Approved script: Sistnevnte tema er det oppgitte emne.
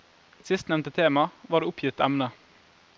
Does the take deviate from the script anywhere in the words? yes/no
yes